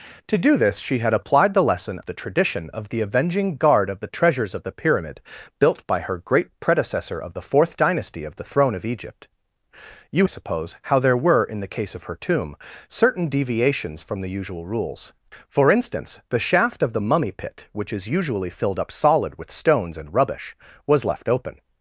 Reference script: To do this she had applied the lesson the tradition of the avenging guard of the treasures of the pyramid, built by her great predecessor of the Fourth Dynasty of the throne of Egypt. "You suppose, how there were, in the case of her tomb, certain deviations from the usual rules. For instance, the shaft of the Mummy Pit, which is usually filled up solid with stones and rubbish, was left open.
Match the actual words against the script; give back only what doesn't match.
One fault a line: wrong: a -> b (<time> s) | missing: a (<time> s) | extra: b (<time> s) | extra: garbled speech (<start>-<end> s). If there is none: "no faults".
no faults